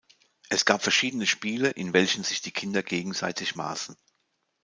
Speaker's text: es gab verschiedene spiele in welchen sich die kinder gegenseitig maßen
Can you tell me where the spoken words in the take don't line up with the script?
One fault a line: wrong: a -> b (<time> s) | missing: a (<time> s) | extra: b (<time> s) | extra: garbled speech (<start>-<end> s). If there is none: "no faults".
no faults